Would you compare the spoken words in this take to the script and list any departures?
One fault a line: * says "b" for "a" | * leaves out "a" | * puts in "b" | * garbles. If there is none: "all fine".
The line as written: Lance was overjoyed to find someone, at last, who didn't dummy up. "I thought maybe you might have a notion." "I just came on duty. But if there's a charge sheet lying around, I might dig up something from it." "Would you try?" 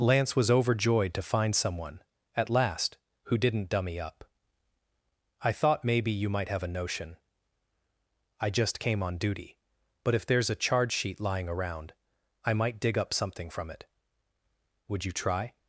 all fine